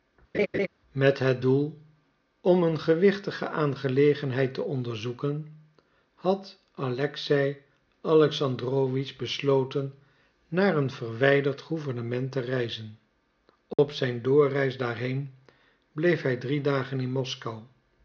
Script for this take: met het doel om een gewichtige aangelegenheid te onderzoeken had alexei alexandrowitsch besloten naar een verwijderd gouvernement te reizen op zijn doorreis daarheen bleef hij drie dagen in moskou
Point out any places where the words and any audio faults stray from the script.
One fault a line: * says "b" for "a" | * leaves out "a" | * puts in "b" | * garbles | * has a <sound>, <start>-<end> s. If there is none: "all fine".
* has a laugh, 0.3-0.7 s
* has a dropout, 13.7-13.8 s